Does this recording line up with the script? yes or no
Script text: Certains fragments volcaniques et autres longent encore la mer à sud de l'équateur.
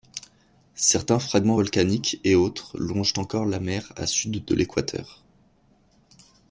yes